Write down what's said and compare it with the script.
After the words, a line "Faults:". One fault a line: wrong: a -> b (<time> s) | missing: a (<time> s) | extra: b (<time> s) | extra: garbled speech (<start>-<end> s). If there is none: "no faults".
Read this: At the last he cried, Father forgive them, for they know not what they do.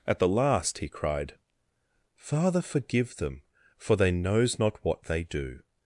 At the last he cried, Father forgive them, for they knows not what they do.
Faults:
wrong: know -> knows (4.1 s)